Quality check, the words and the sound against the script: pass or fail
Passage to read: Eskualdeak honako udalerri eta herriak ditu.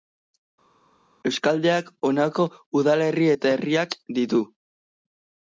pass